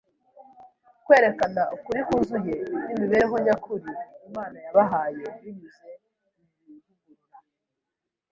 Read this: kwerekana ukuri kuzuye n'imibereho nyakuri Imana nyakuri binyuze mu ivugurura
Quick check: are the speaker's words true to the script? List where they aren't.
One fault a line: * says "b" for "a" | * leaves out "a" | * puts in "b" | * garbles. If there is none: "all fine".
* says "yabahaye" for "nyakuri"